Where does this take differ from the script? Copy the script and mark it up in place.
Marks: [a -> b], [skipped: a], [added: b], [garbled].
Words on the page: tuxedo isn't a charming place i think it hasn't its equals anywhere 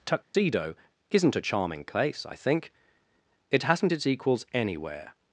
tuxedo isn't a charming place i think it hasn't its equals anywhere